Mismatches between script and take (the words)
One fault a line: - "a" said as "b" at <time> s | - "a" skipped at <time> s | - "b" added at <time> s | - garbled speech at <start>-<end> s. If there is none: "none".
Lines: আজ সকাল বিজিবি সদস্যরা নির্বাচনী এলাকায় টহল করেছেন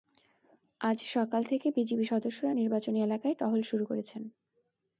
- "থেকে" added at 1.4 s
- "শুরু" added at 3.6 s